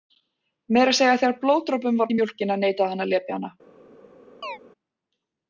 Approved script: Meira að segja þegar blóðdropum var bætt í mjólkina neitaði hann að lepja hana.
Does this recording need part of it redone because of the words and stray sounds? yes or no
yes